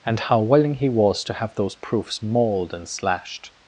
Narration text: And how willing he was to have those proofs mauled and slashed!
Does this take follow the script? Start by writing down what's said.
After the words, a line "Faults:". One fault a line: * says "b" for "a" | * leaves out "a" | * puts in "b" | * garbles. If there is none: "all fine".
And how willing he was to have those proofs mauled and slashed!
Faults:
all fine